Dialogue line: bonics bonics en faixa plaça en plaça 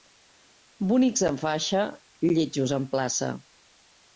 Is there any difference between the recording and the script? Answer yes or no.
yes